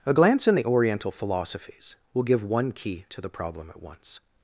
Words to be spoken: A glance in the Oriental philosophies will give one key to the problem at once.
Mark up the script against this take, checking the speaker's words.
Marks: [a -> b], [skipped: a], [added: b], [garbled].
A glance in the Oriental philosophies will give one key to the problem at once.